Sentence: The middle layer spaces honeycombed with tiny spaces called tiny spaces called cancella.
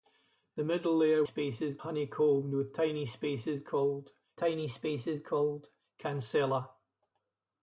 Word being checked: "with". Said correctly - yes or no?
yes